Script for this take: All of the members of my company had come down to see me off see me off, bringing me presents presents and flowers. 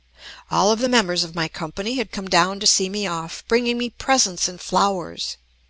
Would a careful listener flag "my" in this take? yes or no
no